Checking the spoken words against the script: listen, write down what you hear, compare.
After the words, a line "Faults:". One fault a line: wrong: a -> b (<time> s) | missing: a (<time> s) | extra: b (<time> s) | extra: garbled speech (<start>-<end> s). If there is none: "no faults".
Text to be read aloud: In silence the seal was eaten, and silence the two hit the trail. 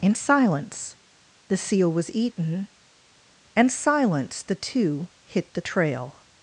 In silence the seal was eaten, and silence the two hit the trail.
Faults:
no faults